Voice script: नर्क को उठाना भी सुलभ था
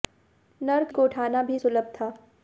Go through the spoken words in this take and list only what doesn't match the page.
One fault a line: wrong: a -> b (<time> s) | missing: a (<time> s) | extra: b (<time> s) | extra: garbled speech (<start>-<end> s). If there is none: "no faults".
no faults